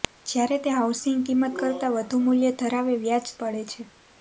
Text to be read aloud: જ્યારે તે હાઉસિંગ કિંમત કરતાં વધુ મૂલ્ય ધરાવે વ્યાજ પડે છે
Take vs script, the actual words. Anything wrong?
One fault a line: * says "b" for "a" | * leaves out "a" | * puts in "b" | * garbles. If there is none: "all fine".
all fine